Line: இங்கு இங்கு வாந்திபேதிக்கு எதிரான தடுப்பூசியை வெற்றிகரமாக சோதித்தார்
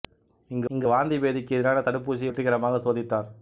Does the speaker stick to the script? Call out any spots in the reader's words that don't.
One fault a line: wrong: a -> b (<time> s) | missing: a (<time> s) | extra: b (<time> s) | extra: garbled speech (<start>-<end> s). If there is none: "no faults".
no faults